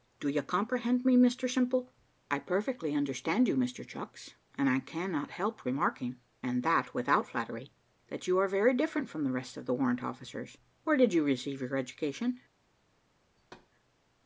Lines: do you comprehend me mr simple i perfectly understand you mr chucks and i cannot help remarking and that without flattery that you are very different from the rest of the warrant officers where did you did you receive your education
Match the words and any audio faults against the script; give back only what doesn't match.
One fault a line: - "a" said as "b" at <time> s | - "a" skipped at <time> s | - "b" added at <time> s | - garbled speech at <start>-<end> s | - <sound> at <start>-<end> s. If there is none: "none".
- "did you" skipped at 11.3 s
- thud at 13.4-13.7 s